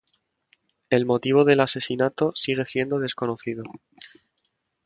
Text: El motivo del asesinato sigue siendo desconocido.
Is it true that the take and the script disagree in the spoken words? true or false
false